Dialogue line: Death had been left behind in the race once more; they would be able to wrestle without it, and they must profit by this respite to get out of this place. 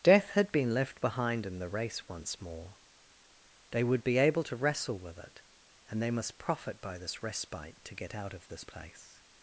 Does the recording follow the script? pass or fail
fail